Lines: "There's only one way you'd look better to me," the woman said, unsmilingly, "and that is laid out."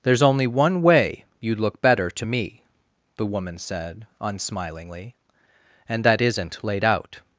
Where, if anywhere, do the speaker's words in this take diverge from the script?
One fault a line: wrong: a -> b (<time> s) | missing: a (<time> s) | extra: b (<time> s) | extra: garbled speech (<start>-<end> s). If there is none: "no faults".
wrong: is -> isn't (6.2 s)